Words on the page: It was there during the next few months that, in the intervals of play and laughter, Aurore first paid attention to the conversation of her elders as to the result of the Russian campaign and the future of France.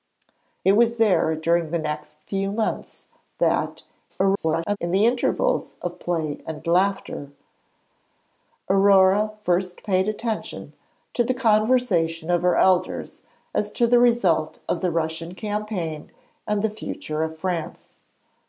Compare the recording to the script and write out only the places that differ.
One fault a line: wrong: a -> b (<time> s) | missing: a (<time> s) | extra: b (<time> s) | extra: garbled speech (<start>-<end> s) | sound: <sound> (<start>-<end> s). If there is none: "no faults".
extra: garbled speech (4.1-4.8 s)